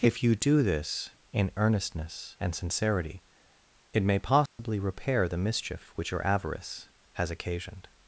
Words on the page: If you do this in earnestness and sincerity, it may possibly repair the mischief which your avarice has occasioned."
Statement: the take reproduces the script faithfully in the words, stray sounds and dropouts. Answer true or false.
false